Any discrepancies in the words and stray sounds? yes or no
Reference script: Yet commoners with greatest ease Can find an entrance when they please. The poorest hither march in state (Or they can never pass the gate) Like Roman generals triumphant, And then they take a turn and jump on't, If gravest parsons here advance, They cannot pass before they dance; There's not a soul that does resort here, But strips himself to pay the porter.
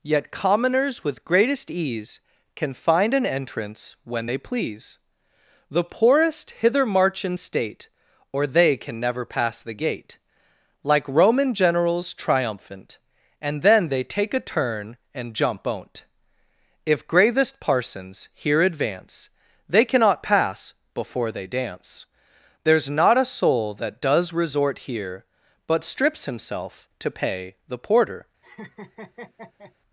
yes